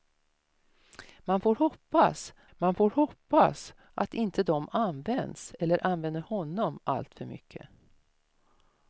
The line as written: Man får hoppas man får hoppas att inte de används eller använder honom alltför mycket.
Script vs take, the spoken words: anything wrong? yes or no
no